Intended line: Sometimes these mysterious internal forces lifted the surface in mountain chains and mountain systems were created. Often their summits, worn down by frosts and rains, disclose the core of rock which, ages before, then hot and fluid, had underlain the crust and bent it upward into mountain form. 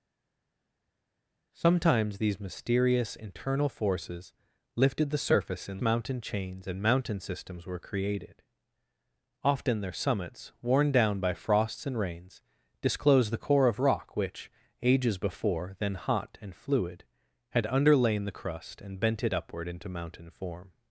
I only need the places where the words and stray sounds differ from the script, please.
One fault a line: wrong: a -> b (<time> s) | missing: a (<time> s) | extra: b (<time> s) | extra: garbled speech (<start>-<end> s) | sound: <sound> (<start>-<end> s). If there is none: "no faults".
no faults